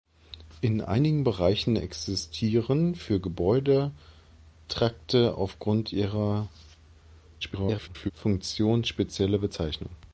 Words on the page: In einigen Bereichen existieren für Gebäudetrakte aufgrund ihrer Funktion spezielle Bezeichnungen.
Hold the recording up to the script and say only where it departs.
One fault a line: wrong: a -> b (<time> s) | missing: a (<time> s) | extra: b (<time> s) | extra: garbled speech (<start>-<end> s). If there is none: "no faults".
extra: garbled speech (7.4-8.1 s)